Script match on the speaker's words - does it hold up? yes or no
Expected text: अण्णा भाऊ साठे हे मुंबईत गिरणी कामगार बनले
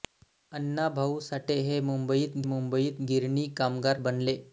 no